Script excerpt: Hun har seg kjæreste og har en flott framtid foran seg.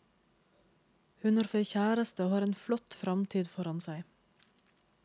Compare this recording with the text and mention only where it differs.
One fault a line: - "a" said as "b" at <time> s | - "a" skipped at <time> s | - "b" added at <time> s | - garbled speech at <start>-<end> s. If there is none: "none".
none